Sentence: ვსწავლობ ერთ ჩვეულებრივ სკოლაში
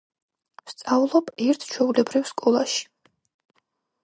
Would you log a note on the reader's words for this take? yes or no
no